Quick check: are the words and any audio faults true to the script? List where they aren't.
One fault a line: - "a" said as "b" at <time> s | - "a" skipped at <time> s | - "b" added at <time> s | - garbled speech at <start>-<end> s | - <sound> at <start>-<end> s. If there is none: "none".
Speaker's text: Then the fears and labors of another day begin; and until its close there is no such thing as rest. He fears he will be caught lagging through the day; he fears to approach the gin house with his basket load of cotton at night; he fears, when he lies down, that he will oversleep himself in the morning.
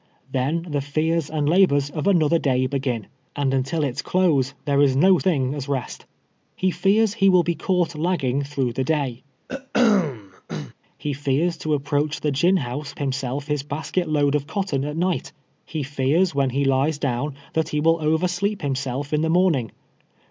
- "such" skipped at 5.2 s
- throat clearing at 9.5-10.7 s
- "with" said as "himself" at 13.0 s